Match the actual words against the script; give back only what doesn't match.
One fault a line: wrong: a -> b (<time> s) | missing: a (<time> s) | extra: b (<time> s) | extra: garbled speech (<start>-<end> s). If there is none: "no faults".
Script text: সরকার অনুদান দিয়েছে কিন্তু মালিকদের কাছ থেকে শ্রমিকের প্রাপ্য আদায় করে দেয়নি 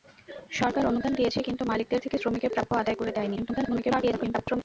missing: কাছ (2.0 s)
extra: garbled speech (3.4-4.6 s)